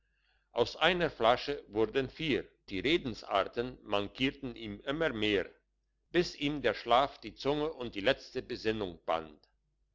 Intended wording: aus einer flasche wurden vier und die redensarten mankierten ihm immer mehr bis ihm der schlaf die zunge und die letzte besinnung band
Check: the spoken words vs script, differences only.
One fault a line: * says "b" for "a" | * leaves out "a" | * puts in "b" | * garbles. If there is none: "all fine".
* leaves out "und"